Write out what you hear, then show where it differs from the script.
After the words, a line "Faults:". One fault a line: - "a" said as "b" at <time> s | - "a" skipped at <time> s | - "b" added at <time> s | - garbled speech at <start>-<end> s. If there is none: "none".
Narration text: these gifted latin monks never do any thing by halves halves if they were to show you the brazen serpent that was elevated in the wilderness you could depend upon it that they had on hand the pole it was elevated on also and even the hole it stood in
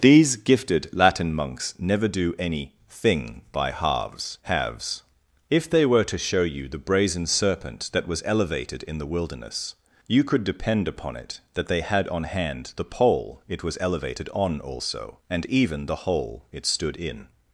these gifted latin monks never do any thing by halves halves if they were to show you the brazen serpent that was elevated in the wilderness you could depend upon it that they had on hand the pole it was elevated on also and even the hole it stood in
Faults:
none